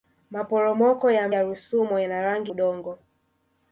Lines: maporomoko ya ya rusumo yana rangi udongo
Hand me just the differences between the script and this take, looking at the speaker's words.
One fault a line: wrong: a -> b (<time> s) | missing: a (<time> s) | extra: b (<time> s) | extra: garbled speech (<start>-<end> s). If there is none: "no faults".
no faults